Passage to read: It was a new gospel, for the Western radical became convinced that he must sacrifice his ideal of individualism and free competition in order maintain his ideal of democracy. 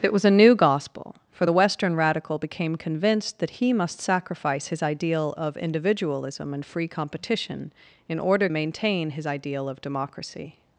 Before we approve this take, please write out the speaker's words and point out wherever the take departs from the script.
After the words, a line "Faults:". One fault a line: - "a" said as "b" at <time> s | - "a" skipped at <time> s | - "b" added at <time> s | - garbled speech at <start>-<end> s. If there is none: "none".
It was a new gospel, for the Western radical became convinced that he must sacrifice his ideal of individualism and free competition in order maintain his ideal of democracy.
Faults:
none